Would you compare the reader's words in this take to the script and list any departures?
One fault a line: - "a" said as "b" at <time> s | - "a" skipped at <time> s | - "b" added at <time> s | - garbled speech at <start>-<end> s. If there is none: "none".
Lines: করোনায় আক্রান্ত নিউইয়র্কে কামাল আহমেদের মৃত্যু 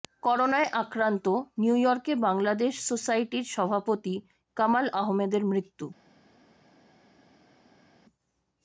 - "বাংলাদেশ সোসাইটির সভাপতি" added at 2.2 s